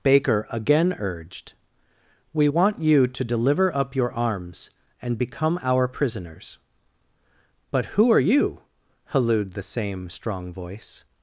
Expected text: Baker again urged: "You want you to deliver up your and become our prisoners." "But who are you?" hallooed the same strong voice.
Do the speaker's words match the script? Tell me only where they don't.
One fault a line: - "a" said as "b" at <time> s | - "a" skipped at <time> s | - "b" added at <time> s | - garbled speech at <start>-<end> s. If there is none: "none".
- "You" said as "We" at 2.3 s
- "arms" added at 4.1 s